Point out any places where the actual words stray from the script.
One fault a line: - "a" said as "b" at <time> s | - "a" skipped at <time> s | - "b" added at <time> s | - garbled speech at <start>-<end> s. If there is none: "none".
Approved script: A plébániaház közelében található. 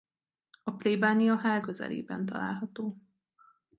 none